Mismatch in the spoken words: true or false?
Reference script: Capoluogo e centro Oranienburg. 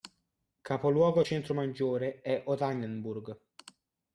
true